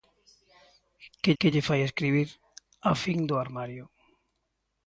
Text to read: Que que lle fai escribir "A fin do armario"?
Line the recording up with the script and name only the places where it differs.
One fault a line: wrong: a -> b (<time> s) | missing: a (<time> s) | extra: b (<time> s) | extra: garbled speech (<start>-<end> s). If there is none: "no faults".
no faults